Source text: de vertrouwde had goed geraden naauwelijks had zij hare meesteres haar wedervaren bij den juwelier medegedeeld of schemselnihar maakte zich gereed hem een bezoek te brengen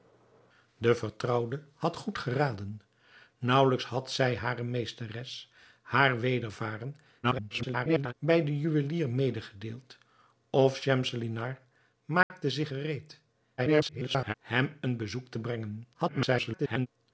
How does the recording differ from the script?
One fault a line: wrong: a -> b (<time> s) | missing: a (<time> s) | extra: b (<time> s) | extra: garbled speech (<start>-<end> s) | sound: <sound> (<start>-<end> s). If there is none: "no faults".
extra: garbled speech (7.2-8.1 s)
sound: dropout (12.2-12.3 s)
extra: garbled speech (13.6-14.3 s)
extra: garbled speech (15.9-16.9 s)